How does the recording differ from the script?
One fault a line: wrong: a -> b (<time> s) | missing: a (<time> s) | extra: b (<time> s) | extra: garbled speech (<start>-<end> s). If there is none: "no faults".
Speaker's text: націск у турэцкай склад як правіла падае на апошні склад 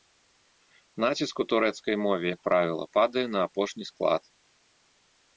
wrong: склад -> мове (2.0 s)